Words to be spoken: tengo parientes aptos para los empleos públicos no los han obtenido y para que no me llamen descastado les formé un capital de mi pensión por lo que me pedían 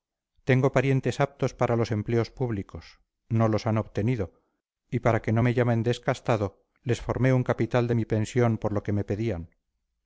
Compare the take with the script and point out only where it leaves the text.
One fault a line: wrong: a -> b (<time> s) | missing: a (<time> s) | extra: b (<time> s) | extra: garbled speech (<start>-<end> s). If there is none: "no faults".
no faults